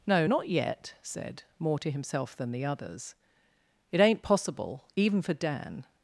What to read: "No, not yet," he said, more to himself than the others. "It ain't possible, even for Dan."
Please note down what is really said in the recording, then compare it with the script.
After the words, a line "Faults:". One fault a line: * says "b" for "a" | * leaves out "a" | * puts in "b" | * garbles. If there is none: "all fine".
"No, not yet," said, more to himself than the others. "It ain't possible, even for Dan."
Faults:
* leaves out "he"